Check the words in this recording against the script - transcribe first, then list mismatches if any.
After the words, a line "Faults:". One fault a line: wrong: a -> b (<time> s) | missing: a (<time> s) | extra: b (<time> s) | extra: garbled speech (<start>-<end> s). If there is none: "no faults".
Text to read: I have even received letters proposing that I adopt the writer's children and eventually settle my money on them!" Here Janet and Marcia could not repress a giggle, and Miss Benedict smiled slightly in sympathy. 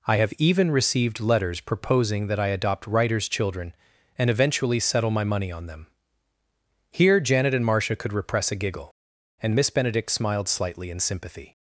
I have even received letters proposing that I adopt writer's children and eventually settle my money on them!" Here Janet and Marcia could repress a giggle, and Miss Benedict smiled slightly in sympathy.
Faults:
missing: the (2.9 s)
missing: not (8.1 s)